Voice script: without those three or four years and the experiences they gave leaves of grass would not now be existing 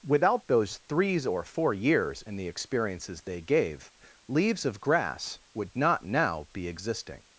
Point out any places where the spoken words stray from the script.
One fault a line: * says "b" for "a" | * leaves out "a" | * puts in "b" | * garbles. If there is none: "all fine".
* says "threes" for "three"